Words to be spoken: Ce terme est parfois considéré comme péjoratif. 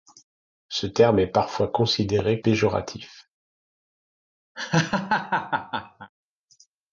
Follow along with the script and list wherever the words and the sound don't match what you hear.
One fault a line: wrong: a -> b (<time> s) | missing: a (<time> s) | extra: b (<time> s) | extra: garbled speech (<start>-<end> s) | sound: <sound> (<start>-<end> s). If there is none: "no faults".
missing: comme (2.4 s)
sound: laugh (4.5-6.1 s)